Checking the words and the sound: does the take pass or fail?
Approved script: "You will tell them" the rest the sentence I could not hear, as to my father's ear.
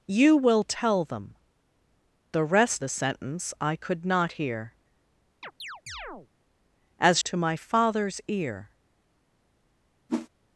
fail